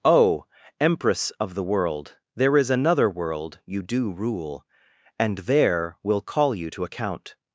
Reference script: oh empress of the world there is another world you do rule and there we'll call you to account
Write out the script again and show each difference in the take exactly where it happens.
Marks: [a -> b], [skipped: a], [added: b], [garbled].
oh empress of the world there is another world you do rule and there we'll call you to account